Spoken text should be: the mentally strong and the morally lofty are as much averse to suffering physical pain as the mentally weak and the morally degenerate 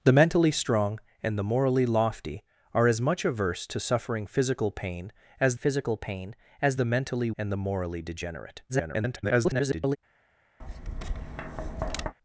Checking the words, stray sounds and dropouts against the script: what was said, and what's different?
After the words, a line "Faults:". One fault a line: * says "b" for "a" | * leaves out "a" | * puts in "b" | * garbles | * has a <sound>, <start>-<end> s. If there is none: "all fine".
the mentally strong and the morally lofty are as much averse to suffering physical pain as physical pain as the mentally and the morally degenerate [garbled]
Faults:
* puts in "physical pain as"
* leaves out "weak"
* garbles
* has a tap, 10.6-12.1 s